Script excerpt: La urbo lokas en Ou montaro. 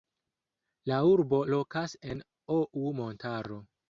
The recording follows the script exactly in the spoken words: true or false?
true